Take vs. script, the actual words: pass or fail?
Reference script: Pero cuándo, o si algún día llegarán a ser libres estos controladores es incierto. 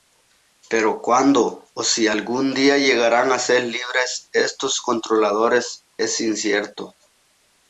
pass